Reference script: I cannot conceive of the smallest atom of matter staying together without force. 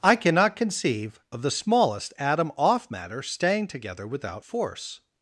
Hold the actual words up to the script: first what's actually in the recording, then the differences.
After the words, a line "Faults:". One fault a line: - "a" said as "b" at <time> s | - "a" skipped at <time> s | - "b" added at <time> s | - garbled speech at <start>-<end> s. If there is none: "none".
I cannot conceive of the smallest atom off matter staying together without force.
Faults:
- "of" said as "off" at 2.6 s